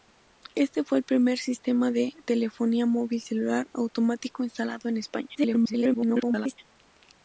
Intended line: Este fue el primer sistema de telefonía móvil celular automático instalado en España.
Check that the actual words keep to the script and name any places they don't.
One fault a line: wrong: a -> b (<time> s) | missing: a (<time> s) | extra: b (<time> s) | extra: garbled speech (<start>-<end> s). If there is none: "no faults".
extra: garbled speech (5.3-6.6 s)